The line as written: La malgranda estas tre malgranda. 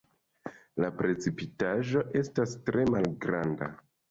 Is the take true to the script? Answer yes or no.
no